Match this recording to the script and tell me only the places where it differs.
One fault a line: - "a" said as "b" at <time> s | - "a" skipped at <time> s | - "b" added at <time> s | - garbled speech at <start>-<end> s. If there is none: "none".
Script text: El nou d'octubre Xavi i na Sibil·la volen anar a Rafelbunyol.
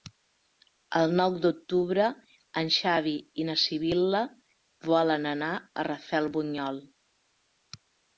- "en" added at 2.6 s